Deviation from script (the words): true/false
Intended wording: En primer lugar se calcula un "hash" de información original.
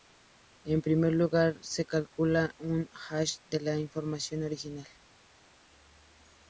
true